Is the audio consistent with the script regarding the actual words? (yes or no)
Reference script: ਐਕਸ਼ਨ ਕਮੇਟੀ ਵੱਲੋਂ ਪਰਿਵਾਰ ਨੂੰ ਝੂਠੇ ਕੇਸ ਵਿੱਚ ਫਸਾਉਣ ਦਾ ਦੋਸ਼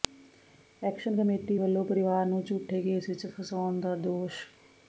yes